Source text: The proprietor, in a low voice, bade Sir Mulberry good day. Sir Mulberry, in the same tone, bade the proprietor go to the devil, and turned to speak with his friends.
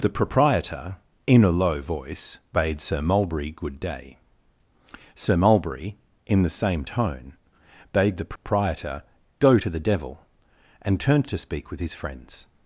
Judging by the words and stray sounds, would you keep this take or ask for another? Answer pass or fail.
fail